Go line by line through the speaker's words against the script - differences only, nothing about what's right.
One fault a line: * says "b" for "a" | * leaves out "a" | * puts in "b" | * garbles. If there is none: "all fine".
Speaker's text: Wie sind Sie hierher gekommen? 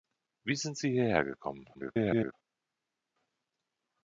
* garbles